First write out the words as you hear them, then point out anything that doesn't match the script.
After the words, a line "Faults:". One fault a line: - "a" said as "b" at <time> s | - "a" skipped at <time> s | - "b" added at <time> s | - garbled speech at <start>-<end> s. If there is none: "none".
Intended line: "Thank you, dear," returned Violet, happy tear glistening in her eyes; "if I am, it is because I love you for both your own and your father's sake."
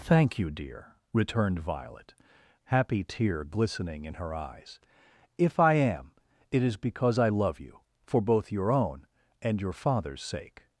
"Thank you, dear," returned Violet, happy tear glistening in her eyes; "if I am, it is because I love you for both your own and your father's sake."
Faults:
none